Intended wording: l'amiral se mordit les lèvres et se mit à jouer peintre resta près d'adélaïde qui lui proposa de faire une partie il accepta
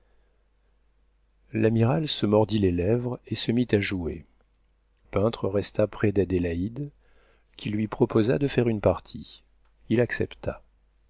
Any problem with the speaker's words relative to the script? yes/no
no